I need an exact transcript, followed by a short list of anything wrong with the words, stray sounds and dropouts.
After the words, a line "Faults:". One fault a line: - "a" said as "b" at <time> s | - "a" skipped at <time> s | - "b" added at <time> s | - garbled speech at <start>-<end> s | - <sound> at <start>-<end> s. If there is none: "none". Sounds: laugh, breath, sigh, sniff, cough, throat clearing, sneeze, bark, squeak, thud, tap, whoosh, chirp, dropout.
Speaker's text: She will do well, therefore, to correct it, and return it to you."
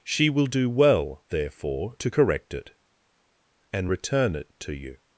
She will do well, therefore, to correct it, and return it to you."
Faults:
none